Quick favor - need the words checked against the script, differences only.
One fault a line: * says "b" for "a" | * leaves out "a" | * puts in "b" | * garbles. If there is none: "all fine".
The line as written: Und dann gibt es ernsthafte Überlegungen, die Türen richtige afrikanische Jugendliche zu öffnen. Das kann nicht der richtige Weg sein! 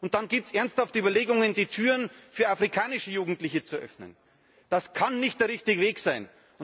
* says "für" for "richtige"